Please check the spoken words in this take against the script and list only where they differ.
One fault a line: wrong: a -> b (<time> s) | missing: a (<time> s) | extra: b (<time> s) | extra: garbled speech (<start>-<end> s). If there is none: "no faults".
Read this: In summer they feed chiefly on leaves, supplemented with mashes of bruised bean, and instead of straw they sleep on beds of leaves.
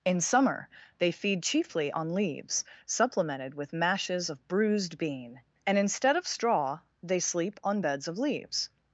no faults